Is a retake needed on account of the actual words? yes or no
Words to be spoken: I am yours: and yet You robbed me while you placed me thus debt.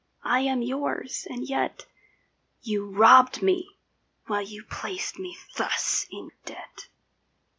yes